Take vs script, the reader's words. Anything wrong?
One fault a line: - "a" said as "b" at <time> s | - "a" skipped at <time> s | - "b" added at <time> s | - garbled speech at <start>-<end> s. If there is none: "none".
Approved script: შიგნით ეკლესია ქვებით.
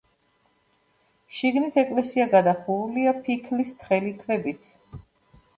- "გადახურულია ფიქლის თხელი" added at 2.3 s